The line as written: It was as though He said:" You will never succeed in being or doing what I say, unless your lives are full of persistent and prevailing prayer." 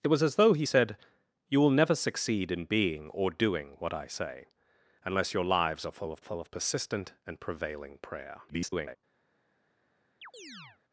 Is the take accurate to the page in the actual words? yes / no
no